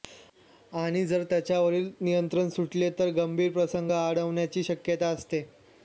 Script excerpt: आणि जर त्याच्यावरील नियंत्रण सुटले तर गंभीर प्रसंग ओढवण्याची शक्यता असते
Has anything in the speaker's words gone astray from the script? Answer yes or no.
no